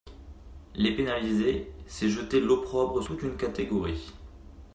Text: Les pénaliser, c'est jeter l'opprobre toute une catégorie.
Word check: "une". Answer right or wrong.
right